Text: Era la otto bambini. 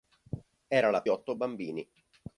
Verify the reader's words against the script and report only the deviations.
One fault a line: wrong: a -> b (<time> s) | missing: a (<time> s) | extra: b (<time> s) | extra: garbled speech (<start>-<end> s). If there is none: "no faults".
no faults